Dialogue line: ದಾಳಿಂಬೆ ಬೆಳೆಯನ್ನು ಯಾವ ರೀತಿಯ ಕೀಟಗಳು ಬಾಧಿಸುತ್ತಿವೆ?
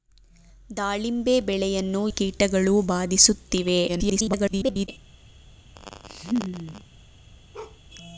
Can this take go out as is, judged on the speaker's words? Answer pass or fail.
fail